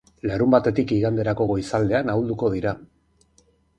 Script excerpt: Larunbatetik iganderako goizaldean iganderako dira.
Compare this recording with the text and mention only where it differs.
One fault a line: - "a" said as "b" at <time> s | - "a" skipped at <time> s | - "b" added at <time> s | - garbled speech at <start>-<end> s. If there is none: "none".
- "iganderako" said as "ahulduko" at 2.1 s